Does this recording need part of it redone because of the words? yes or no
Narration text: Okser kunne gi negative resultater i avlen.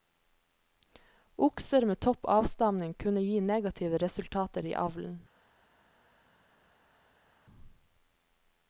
yes